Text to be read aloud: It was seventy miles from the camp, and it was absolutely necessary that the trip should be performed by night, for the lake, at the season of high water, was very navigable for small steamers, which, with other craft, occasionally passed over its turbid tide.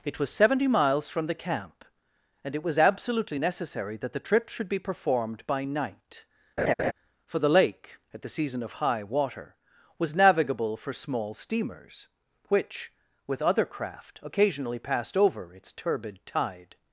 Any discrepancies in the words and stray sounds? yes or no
yes